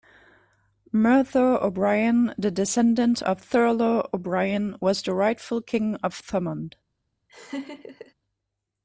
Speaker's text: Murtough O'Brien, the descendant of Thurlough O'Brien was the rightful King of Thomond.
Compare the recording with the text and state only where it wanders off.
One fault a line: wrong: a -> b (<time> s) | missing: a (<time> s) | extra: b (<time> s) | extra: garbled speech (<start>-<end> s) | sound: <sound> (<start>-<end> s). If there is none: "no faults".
sound: laugh (7.3-8.1 s)